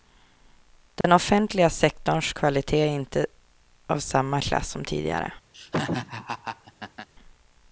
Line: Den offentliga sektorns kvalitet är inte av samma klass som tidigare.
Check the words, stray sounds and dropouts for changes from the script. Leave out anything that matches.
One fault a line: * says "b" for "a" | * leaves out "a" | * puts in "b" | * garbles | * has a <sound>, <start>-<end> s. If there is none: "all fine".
* has a dropout, 1.0-1.0 s
* has a laugh, 5.5-7.1 s